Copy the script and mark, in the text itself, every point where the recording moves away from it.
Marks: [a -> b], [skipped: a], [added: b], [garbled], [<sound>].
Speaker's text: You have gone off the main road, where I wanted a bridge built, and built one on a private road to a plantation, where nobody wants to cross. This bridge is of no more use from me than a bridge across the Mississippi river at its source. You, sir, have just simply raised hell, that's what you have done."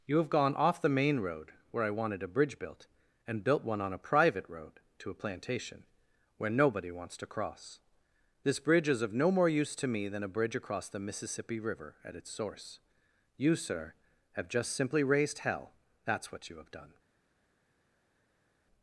You have gone off the main road, where I wanted a bridge built, and built one on a private road to a plantation, where nobody wants to cross. This bridge is of no more use [from -> to] me than a bridge across the Mississippi river at its source. You, sir, have just simply raised hell, that's what you have done."